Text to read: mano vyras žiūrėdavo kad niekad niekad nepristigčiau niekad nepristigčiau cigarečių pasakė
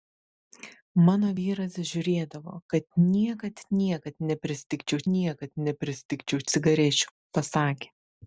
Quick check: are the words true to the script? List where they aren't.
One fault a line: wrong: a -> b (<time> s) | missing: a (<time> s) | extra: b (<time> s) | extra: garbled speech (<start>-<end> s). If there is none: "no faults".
no faults